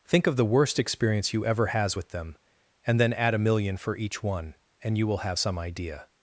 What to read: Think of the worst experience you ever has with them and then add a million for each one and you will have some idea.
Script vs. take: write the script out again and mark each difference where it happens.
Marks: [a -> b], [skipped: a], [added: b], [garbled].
Think of the worst experience you ever has with them and then add a million for each one and you will have some idea.